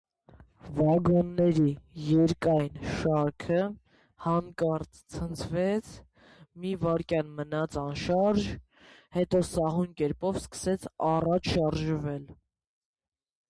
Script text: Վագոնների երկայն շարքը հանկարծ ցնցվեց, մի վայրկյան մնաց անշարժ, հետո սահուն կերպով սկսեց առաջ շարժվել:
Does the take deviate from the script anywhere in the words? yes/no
no